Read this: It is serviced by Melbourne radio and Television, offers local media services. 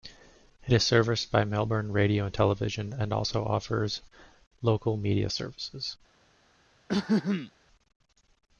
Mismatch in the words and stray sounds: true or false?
true